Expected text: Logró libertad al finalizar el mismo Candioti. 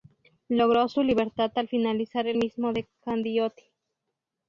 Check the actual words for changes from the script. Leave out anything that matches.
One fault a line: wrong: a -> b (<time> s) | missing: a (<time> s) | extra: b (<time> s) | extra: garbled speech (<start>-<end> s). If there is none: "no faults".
extra: su (0.9 s)
extra: de (2.7 s)